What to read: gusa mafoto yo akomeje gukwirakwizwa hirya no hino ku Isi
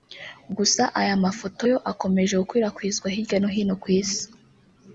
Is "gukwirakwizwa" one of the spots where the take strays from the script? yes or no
no